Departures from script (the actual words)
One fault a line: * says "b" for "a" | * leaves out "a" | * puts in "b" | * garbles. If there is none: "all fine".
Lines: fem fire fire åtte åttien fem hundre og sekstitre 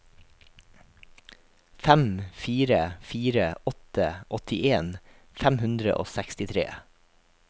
all fine